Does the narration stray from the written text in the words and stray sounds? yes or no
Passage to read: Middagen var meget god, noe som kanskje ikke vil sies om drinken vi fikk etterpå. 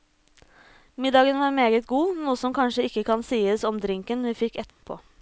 yes